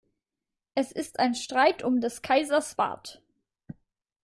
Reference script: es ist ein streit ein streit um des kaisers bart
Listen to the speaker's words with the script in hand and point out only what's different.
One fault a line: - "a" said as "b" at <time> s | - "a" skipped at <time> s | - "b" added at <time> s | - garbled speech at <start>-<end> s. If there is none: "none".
- "ein streit" skipped at 1.8 s